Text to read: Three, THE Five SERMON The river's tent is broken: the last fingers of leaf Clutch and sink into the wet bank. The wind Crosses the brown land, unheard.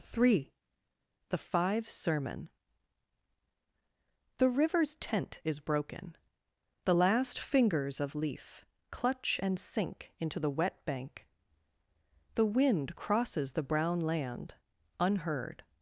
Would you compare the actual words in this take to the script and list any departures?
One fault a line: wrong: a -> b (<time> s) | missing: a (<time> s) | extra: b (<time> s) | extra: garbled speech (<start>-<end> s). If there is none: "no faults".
no faults